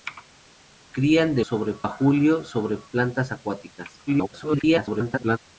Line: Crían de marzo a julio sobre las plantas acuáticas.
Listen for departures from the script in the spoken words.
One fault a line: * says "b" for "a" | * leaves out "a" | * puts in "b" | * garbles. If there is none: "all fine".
* says "sobre" for "marzo"
* leaves out "las"
* garbles